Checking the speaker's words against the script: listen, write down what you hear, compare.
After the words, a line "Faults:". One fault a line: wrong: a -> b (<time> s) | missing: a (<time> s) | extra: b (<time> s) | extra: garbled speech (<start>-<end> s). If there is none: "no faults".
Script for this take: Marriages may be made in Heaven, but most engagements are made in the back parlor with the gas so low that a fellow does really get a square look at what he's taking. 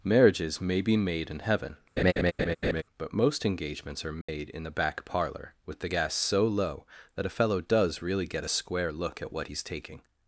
Marriages may be made in Heaven, but most engagements are made in the back parlor with the gas so low that a fellow does really get a square look at what he's taking.
Faults:
no faults